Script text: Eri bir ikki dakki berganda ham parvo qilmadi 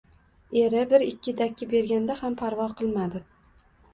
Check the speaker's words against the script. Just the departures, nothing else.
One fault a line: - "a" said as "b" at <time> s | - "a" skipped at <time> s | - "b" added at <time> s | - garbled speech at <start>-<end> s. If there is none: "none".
none